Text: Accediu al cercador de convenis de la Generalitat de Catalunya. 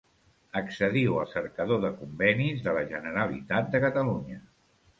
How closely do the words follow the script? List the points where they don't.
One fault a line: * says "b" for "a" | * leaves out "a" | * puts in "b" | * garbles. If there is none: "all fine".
all fine